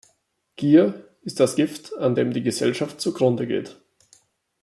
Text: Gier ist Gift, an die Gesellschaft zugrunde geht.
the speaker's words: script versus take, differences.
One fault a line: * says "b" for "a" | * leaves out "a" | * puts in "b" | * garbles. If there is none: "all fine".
* puts in "das"
* puts in "dem"